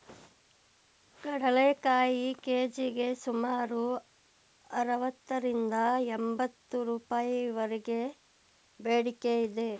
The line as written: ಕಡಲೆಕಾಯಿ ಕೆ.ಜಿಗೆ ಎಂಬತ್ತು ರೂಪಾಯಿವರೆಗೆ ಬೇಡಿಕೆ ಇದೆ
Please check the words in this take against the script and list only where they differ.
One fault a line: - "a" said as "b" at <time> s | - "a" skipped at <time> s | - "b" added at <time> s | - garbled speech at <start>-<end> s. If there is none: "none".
- "ಸುಮಾರು ಅರವತ್ತರಿಂದ" added at 3.1 s